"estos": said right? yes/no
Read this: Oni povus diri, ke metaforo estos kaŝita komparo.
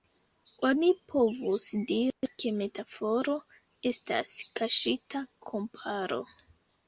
no